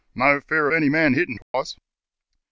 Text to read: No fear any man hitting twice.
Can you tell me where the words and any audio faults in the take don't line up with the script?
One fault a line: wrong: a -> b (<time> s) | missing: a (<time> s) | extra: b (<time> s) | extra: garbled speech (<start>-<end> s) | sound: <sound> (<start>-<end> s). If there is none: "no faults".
sound: dropout (1.4-1.5 s)